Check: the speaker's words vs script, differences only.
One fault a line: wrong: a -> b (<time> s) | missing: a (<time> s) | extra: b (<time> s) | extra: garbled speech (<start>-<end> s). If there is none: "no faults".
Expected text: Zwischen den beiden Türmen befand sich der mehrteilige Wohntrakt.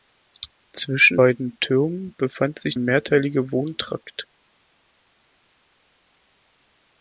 missing: den (1.2 s)
missing: der (2.8 s)